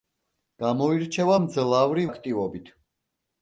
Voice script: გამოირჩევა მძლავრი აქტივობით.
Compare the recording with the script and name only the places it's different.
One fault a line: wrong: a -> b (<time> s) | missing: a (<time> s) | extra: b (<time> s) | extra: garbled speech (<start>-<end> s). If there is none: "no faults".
no faults